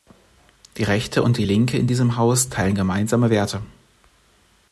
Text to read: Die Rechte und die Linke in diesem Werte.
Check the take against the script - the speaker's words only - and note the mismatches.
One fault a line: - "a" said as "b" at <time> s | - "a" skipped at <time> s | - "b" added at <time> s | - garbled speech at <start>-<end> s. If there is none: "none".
- "Haus teilen gemeinsame" added at 2.2 s